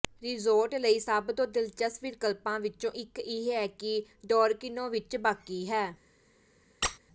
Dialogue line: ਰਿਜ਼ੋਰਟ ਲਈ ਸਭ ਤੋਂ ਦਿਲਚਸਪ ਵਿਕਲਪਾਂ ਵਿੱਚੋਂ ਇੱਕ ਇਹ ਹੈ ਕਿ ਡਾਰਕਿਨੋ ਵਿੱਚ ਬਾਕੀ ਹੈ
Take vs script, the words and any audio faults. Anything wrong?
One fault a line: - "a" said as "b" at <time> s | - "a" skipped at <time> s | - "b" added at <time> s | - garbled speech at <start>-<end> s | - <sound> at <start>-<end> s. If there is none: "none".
- squeak at 6.8-7.0 s